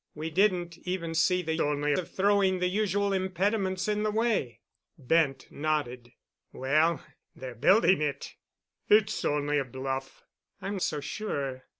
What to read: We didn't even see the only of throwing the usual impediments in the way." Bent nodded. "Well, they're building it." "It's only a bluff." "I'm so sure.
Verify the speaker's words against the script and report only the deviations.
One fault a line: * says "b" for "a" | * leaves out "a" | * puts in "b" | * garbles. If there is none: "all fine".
all fine